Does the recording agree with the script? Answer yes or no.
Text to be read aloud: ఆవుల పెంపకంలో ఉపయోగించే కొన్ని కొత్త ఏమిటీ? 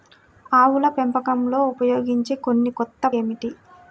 yes